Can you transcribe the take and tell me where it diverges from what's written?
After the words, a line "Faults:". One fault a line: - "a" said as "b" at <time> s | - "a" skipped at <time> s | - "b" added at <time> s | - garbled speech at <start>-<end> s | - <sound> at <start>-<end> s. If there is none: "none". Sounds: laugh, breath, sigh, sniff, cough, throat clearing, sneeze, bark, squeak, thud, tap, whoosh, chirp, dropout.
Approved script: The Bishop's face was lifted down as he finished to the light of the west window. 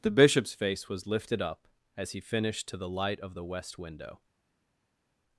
The Bishop's face was lifted up as he finished to the light of the west window.
Faults:
- "down" said as "up" at 1.4 s